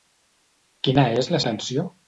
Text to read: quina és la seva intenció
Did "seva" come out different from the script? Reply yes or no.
yes